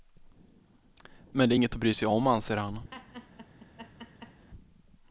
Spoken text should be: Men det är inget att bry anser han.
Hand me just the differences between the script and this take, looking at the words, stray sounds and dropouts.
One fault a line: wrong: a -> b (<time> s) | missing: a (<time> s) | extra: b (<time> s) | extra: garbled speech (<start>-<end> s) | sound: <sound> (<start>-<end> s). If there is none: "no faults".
extra: sig om (1.9 s)
sound: laugh (2.9-4.5 s)